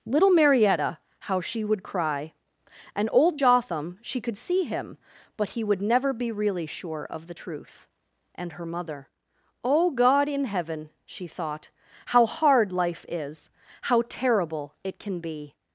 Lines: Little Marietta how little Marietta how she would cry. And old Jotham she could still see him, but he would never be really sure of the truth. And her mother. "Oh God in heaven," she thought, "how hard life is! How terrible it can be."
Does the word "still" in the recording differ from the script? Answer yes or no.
yes